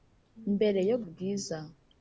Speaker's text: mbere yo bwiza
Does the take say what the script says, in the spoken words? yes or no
yes